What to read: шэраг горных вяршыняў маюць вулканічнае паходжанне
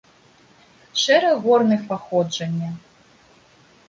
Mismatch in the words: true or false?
true